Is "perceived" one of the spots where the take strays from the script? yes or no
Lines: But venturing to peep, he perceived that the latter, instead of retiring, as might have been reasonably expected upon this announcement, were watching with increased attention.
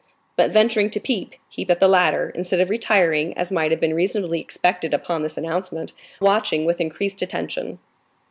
yes